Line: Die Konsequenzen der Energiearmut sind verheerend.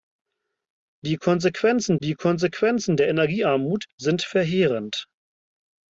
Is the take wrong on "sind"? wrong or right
right